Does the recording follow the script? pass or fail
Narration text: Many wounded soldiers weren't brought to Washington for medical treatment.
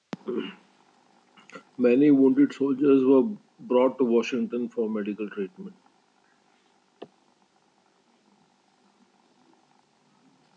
fail